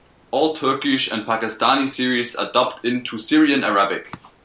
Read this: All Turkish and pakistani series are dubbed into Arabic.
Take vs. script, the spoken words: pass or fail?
fail